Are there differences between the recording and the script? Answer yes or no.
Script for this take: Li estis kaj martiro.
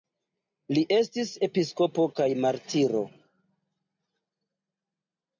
yes